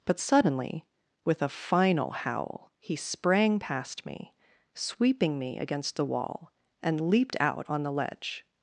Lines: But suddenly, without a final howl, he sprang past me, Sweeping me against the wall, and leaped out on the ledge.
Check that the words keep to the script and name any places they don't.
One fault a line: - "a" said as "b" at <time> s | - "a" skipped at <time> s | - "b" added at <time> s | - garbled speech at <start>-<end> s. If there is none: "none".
- "without" said as "with" at 1.2 s